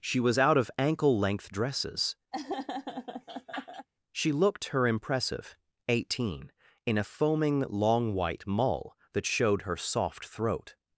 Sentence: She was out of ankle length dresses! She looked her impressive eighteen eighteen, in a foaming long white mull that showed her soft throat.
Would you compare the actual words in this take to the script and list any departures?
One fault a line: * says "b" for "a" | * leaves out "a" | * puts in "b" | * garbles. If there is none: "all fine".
* leaves out "eighteen"